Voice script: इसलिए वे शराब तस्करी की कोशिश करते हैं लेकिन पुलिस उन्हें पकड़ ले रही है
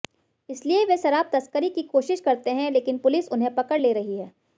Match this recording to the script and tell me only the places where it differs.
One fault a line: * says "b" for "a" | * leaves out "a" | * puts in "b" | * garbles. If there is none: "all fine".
all fine